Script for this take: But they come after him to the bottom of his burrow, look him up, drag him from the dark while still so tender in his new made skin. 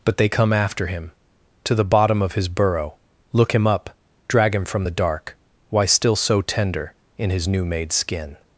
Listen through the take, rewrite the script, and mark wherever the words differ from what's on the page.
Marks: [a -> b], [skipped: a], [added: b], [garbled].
But they come after him to the bottom of his burrow, look him up, drag him from the dark [while -> why] still so tender in his new made skin.